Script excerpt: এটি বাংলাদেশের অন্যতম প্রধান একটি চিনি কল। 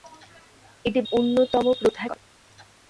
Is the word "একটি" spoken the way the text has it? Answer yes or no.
no